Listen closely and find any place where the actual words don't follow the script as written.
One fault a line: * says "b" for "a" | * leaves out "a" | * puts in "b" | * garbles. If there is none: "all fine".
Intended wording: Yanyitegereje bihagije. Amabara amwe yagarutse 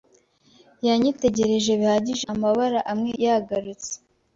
all fine